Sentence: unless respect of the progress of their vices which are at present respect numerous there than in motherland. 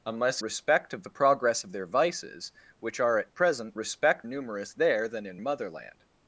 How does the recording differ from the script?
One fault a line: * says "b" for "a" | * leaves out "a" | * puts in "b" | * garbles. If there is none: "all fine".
all fine